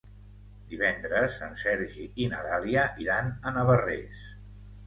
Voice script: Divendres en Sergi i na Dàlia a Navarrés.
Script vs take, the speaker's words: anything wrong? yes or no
yes